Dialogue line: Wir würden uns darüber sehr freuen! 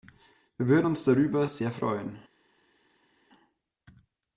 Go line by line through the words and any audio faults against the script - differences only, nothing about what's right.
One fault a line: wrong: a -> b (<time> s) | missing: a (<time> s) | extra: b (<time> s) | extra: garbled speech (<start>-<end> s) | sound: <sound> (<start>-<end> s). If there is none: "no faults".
no faults